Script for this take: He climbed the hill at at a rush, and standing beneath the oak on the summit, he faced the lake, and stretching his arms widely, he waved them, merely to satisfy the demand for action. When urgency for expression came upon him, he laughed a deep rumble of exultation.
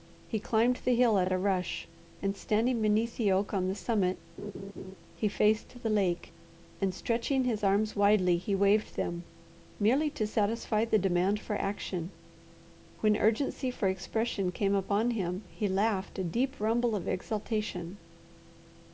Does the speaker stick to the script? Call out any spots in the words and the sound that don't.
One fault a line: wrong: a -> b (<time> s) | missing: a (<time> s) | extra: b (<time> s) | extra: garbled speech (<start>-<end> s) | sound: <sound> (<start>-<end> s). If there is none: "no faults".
sound: laugh (4.4-4.9 s)